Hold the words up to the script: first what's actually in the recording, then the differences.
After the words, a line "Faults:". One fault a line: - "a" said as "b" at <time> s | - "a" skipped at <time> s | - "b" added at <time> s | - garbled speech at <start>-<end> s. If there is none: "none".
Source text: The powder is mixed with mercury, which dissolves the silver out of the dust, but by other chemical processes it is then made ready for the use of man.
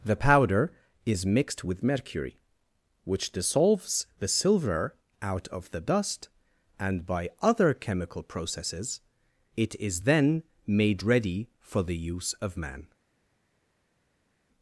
The powder is mixed with mercury, which dissolves the silver out of the dust, and by other chemical processes it is then made ready for the use of man.
Faults:
- "but" said as "and" at 6.8 s